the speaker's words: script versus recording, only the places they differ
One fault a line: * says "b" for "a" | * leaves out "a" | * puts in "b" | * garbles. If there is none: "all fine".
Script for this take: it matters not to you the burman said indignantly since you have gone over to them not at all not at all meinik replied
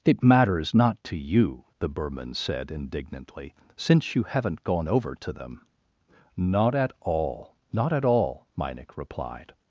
* says "haven't" for "have"